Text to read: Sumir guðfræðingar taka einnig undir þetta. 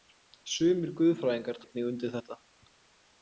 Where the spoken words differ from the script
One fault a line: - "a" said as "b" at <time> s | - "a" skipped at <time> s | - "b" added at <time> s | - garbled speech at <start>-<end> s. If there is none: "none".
- "taka" skipped at 1.6 s